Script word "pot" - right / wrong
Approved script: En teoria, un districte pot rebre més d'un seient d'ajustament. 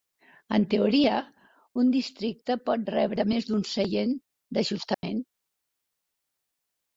right